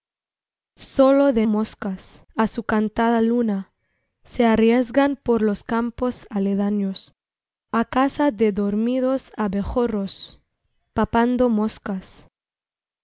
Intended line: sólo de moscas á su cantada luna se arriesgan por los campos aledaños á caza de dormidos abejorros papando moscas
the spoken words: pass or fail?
pass